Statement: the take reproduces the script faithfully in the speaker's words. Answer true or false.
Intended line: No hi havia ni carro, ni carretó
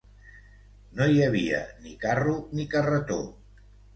true